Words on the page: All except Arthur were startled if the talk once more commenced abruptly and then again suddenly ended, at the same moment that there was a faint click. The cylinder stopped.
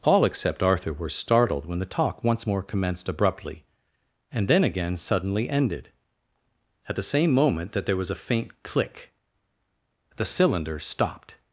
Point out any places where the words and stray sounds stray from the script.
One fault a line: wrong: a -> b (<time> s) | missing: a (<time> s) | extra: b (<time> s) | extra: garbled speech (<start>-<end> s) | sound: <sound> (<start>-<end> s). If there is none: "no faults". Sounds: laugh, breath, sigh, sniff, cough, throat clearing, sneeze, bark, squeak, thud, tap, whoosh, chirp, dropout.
wrong: if -> when (1.7 s)